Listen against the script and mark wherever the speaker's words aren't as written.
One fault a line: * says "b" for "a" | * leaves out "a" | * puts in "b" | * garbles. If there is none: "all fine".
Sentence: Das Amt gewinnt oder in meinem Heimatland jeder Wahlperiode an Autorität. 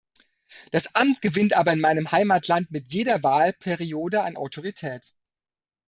* says "aber" for "oder"
* puts in "mit"